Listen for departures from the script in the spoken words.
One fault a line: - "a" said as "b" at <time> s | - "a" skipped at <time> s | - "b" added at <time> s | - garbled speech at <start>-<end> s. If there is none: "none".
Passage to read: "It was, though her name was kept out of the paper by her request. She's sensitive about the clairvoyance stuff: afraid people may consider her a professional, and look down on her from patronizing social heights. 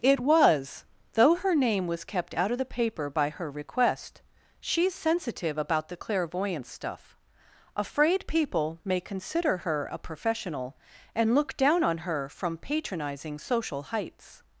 none